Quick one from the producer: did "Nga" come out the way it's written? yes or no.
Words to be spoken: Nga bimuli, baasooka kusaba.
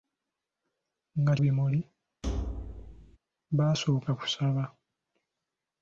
yes